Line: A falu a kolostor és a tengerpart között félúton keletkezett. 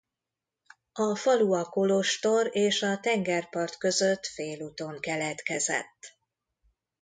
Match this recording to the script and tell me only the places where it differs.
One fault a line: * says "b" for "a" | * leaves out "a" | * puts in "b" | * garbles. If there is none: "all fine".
all fine